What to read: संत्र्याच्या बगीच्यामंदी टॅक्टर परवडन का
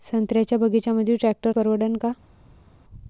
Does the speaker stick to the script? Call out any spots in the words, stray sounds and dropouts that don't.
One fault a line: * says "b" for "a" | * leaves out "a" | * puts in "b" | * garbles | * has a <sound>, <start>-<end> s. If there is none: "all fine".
all fine